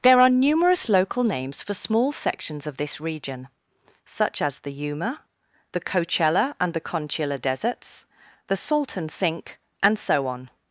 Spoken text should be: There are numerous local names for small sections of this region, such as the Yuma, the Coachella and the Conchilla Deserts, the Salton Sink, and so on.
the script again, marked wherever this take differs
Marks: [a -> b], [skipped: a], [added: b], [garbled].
There are numerous local names for small sections of this region, such as the Yuma, the Coachella and the Conchilla Deserts, the Salton Sink, and so on.